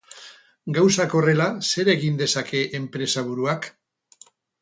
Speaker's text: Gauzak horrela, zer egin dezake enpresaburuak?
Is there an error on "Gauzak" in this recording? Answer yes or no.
no